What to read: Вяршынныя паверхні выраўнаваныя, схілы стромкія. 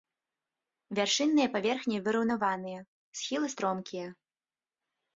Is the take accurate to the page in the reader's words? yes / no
yes